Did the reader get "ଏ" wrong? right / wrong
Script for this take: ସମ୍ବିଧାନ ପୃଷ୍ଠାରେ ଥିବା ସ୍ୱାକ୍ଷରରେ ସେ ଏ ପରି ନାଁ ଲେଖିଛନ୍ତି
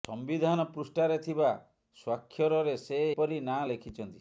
wrong